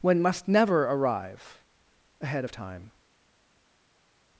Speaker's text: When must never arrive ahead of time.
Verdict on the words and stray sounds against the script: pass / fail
pass